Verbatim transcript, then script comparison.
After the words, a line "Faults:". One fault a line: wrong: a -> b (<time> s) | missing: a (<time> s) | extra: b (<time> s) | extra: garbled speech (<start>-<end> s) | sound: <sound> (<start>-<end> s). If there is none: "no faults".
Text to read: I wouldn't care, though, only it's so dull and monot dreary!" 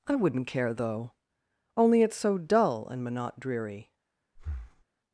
I wouldn't care, though, only it's so dull and monot dreary!"
Faults:
sound: breath (4.4-4.9 s)